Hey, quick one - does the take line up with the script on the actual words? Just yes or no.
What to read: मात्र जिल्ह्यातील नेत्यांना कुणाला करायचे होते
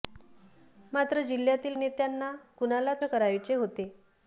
yes